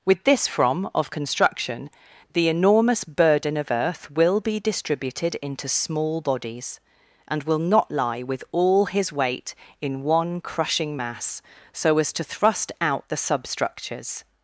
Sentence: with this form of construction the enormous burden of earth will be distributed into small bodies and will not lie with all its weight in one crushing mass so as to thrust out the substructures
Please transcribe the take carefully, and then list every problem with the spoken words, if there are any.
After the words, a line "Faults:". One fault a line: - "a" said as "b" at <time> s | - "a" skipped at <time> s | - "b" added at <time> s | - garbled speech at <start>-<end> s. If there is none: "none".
with this from of construction the enormous burden of earth will be distributed into small bodies and will not lie with all his weight in one crushing mass so as to thrust out the substructures
Faults:
- "form" said as "from" at 0.5 s
- "its" said as "his" at 8.8 s